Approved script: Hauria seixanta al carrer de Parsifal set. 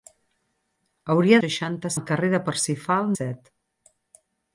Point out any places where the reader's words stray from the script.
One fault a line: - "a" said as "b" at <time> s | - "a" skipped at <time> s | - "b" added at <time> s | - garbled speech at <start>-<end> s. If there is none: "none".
none